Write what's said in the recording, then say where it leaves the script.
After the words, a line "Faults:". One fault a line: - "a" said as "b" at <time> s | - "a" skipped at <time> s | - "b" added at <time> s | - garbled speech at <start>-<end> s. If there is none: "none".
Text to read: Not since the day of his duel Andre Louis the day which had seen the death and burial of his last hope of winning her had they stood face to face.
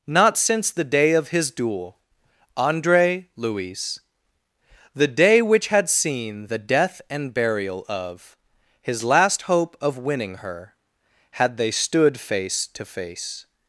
Not since the day of his duel Andre Louis the day which had seen the death and burial of his last hope of winning her had they stood face to face.
Faults:
none